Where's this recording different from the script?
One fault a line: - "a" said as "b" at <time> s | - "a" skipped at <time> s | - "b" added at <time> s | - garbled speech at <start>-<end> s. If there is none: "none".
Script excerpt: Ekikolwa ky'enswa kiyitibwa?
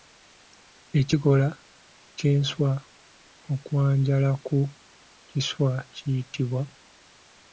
- "okwanjala ku kiswa" added at 3.5 s